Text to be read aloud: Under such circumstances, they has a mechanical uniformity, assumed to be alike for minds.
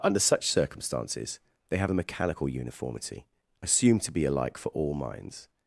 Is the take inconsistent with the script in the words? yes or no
yes